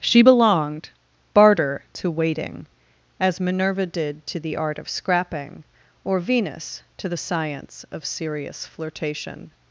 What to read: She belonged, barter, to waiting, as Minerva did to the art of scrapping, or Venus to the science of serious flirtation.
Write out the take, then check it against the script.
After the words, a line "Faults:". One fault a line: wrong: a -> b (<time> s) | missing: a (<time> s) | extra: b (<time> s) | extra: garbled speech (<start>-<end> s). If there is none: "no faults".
She belonged, barter, to waiting, as Minerva did to the art of scrapping, or Venus to the science of serious flirtation.
Faults:
no faults